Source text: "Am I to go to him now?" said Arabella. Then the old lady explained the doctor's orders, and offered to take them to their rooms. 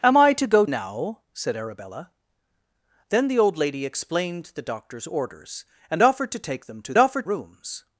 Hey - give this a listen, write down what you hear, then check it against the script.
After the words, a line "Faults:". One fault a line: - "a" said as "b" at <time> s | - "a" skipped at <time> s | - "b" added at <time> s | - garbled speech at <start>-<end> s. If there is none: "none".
"Am I to go now?" said Arabella. Then the old lady explained the doctor's orders, and offered to take them to offered rooms.
Faults:
- "to him" skipped at 0.7 s
- "their" said as "offered" at 7.0 s